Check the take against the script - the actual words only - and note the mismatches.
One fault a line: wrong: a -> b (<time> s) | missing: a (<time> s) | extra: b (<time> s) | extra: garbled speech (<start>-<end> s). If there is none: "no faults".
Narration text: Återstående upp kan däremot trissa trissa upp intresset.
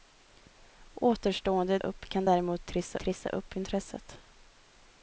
no faults